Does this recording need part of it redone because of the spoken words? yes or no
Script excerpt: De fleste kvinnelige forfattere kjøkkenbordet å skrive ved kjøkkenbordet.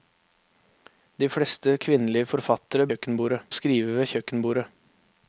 no